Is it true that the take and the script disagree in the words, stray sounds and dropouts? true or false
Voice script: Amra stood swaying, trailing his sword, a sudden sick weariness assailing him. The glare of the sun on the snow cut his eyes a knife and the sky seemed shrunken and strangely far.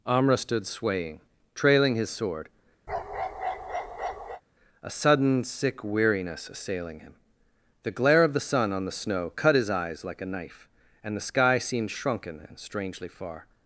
true